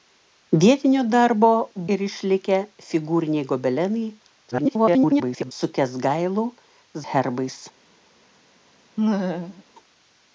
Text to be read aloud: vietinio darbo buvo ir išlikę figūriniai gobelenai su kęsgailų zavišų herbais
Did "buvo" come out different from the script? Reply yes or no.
yes